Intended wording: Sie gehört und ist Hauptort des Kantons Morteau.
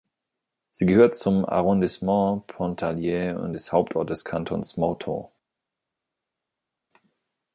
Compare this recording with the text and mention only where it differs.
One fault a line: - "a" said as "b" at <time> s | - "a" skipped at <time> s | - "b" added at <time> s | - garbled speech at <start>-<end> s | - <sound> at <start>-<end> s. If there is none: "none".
- "zum Arrondissement Pontarlier" added at 1.1 s